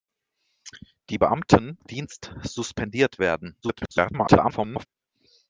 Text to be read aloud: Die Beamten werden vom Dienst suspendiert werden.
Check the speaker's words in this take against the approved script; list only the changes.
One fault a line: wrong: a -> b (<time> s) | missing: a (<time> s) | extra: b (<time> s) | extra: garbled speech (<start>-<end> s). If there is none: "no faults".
missing: werden vom (1.8 s)
extra: garbled speech (3.6-4.9 s)